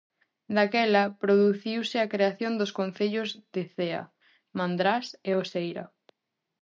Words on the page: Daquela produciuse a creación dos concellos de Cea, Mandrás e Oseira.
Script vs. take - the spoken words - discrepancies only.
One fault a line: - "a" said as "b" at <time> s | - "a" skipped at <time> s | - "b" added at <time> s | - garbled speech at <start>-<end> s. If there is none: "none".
none